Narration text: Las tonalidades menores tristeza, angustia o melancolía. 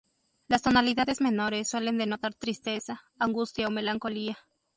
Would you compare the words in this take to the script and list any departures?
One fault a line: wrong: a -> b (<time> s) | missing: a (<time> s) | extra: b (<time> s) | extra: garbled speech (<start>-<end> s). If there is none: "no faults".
extra: suelen denotar (1.7 s)